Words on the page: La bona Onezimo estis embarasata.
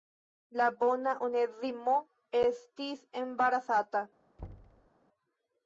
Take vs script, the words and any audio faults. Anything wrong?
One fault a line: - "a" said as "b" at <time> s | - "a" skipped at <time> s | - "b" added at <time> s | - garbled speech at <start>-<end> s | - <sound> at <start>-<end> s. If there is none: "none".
- thud at 4.4-4.9 s